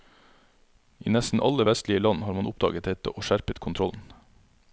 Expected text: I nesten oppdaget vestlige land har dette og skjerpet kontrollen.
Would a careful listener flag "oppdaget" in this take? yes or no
yes